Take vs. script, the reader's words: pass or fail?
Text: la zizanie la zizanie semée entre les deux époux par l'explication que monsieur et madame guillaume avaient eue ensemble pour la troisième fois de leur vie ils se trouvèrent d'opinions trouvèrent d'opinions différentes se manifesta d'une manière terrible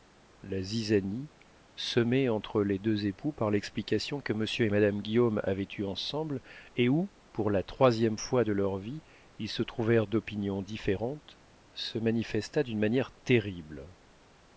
fail